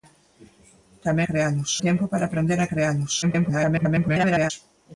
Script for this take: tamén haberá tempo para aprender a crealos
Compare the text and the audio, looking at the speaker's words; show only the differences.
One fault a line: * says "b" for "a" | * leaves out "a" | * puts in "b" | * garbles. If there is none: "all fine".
* says "crealos" for "haberá"
* garbles